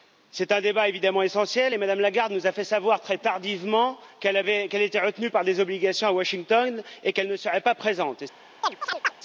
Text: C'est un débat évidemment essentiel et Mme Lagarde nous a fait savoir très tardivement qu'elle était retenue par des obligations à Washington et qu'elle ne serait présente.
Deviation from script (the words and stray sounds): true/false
true